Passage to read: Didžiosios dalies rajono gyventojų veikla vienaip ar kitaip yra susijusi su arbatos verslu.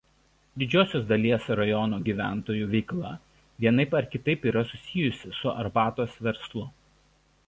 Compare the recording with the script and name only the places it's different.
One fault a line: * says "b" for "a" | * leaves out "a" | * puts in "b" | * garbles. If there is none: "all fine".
all fine